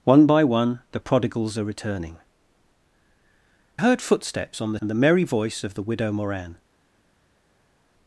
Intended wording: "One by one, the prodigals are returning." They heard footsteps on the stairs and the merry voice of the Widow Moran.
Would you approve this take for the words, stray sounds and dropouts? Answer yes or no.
no